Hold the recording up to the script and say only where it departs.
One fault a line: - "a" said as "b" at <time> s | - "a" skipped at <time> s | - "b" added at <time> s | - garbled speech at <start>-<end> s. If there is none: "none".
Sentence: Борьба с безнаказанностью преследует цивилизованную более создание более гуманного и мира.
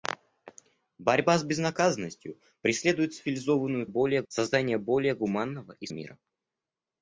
none